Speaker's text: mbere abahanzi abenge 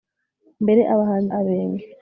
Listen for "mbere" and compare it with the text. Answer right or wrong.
right